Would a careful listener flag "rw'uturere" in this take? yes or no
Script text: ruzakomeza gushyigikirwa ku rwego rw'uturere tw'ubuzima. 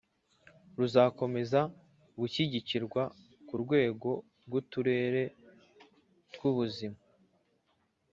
no